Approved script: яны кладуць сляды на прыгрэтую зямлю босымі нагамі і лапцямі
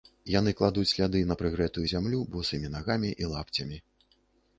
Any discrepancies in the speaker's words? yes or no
no